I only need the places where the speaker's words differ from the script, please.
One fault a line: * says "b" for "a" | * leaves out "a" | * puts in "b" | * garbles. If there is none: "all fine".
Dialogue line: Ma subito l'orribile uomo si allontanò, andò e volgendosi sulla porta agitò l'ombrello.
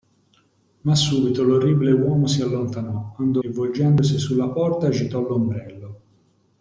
all fine